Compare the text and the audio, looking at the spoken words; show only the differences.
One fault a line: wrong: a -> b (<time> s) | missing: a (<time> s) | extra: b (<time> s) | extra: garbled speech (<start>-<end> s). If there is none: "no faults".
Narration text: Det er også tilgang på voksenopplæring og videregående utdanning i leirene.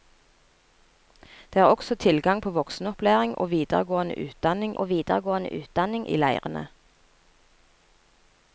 extra: og videregående utdanning (4.8 s)